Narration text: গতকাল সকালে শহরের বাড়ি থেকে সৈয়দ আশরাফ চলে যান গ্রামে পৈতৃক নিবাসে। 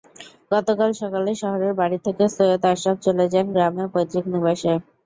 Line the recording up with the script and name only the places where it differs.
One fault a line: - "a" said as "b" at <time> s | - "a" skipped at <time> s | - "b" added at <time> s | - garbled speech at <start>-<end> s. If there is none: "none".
none